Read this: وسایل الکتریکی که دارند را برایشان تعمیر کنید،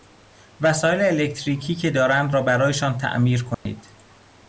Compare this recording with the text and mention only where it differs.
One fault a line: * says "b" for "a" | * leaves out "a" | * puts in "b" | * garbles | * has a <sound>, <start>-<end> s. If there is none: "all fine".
* has a dropout, 3.5-3.7 s